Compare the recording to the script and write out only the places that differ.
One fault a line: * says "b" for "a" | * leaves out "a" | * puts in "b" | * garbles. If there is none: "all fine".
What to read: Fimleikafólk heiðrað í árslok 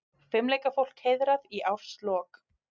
all fine